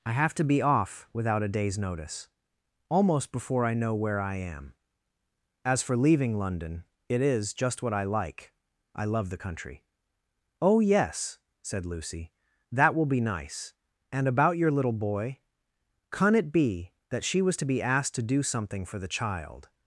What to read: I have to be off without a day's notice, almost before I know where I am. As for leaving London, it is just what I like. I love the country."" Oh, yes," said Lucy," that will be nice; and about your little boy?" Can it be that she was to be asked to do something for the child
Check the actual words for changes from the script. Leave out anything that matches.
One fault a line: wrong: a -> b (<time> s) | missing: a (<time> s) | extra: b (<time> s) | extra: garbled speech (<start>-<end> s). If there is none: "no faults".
no faults